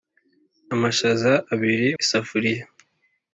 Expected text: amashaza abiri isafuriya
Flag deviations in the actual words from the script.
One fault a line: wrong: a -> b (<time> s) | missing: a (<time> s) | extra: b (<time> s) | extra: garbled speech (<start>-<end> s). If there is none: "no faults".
no faults